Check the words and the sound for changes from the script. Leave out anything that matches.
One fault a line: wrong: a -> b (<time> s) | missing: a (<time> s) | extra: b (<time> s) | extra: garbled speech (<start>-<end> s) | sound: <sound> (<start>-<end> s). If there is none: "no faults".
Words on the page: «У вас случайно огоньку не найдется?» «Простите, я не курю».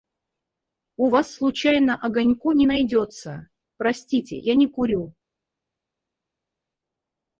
no faults